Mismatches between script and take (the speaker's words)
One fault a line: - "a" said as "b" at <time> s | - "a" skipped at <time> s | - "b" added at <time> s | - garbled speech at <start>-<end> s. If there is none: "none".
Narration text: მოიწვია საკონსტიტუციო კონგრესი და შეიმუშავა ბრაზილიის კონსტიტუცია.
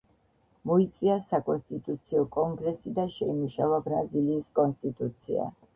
none